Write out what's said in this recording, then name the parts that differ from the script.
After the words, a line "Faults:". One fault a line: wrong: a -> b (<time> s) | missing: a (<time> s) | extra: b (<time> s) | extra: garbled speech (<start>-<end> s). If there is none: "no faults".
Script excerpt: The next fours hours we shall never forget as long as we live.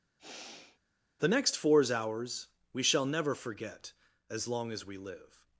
The next fours hours we shall never forget as long as we live.
Faults:
no faults